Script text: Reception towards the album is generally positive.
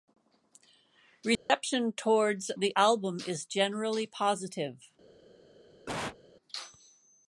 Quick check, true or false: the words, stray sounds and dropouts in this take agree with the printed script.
false